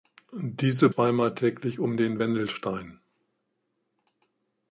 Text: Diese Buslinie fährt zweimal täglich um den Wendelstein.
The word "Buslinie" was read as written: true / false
false